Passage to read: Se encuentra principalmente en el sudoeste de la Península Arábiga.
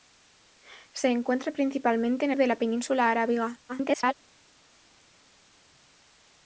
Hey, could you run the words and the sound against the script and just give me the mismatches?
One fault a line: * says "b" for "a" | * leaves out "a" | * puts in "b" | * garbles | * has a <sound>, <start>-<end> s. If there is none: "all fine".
* leaves out "el sudoeste"
* garbles